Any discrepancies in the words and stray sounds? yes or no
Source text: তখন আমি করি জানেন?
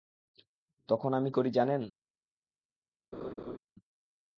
yes